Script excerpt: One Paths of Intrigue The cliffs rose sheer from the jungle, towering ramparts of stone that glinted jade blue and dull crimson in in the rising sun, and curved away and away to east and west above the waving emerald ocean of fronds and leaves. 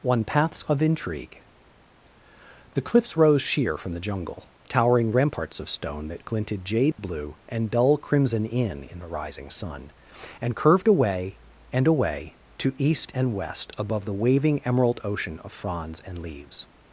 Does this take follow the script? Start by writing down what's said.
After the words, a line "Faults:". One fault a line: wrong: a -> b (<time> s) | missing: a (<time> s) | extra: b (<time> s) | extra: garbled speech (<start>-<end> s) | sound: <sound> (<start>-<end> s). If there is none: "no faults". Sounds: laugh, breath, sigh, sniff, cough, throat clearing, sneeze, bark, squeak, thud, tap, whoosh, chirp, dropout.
One Paths of Intrigue The cliffs rose sheer from the jungle, towering ramparts of stone that glinted jade blue and dull crimson in in the rising sun, and curved away and away to east and west above the waving emerald ocean of fronds and leaves.
Faults:
sound: dropout (6.9-7.0 s)